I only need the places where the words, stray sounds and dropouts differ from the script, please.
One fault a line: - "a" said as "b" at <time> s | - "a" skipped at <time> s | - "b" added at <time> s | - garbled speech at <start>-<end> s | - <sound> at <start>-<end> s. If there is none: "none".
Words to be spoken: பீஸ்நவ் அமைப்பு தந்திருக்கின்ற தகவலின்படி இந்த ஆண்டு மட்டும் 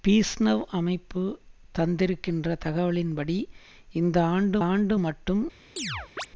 - "ஆண்டு" added at 4.6 s
- chirp at 5.8-6.3 s